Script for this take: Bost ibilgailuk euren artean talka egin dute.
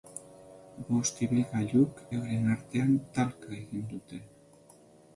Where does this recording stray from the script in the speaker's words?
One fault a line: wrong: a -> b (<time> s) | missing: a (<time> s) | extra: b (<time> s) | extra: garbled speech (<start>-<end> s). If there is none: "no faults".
no faults